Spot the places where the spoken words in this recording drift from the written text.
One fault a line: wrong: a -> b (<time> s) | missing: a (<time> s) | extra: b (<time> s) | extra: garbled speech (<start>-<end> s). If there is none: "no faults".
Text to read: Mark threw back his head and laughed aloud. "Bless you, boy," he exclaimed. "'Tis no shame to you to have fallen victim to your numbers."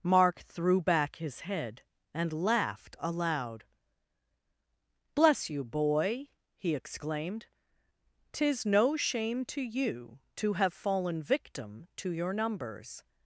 no faults